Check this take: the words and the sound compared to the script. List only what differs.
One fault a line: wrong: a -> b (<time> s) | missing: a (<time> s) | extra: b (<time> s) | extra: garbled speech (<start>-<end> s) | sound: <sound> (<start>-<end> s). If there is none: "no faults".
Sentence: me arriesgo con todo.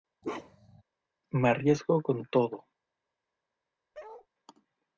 sound: bark (0.2-0.8 s)
sound: bark (3.9-4.3 s)